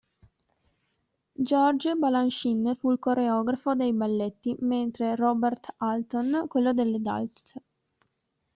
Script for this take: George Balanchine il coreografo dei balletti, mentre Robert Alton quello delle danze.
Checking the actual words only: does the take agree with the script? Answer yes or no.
no